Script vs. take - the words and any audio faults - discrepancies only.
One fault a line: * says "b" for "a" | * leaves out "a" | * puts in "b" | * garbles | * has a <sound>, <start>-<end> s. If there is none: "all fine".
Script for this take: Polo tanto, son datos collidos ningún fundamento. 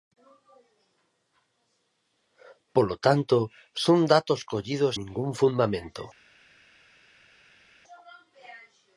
all fine